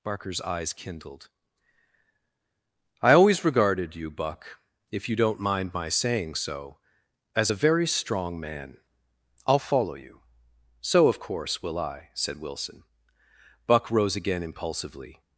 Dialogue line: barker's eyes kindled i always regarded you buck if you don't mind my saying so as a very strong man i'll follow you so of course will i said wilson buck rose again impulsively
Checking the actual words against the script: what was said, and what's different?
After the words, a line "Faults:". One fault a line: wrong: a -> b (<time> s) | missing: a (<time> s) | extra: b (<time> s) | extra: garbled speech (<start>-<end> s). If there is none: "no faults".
barker's eyes kindled i always regarded you buck if you don't mind my saying so as a very strong man i'll follow you so of course will i said wilson buck rose again impulsively
Faults:
no faults